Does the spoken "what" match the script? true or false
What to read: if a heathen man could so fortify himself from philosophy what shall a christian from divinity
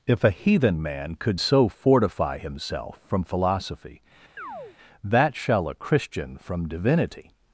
false